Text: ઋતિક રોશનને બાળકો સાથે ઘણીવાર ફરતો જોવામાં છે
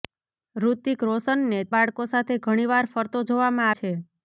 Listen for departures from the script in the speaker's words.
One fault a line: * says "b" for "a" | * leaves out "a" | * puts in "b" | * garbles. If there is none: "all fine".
all fine